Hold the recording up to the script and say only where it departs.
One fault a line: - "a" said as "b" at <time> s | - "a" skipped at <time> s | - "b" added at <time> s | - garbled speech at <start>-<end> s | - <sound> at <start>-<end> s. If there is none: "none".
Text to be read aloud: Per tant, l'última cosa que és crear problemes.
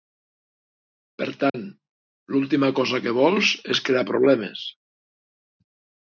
- dropout at 1.5-1.5 s
- "vols" added at 3.2 s